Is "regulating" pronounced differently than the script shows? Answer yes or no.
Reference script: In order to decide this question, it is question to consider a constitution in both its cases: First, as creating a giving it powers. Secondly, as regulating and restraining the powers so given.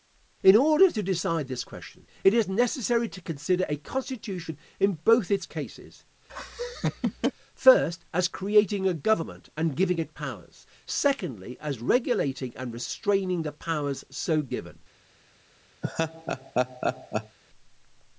no